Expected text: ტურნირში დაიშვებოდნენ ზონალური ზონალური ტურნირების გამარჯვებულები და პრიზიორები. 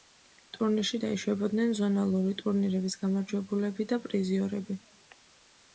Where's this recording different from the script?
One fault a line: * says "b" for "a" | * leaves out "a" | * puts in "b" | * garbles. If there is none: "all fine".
* leaves out "ზონალური"